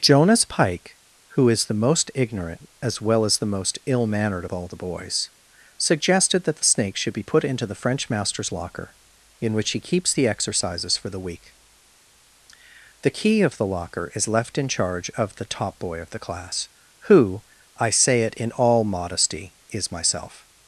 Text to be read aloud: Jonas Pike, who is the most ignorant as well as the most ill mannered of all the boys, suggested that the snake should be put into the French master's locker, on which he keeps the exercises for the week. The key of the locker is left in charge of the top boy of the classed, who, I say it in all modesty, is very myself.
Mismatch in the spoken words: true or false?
true